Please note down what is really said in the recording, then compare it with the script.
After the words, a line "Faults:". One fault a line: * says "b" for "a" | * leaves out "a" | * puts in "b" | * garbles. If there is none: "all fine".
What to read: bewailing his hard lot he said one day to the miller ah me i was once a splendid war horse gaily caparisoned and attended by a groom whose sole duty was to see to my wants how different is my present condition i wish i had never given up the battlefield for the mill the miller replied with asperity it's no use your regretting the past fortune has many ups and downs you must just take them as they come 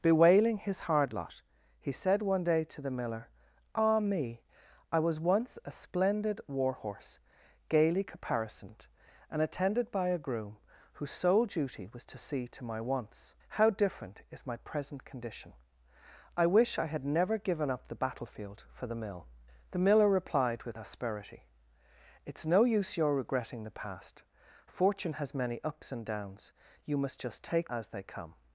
bewailing his hard lot he said one day to the miller ah me i was once a splendid war horse gaily caparisoned and attended by a groom whose sole duty was to see to my wants how different is my present condition i wish i had never given up the battlefield for the mill the miller replied with asperity it's no use your regretting the past fortune has many ups and downs you must just take as they come
Faults:
* leaves out "them"